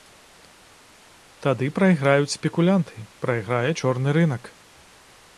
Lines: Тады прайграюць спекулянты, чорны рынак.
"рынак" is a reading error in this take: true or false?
false